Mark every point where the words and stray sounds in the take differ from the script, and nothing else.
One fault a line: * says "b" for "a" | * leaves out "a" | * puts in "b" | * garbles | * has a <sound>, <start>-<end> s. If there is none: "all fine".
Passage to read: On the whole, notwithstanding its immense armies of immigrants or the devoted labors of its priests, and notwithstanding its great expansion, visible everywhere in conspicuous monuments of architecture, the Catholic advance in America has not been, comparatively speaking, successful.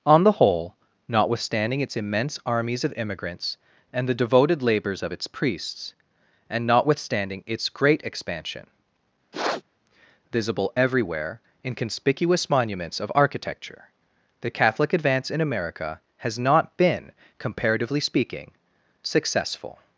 * says "and" for "or"
* has a sniff, 9.3-9.6 s